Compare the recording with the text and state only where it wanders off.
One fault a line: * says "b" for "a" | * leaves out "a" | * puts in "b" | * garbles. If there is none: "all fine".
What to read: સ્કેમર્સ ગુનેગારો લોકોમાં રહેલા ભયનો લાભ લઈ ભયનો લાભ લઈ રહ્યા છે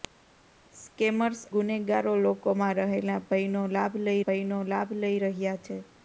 all fine